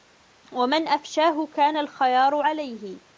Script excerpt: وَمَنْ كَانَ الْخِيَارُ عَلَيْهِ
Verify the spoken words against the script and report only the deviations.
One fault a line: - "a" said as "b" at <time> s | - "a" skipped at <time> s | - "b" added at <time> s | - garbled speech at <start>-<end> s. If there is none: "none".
- "أَفْشَاهُ" added at 0.9 s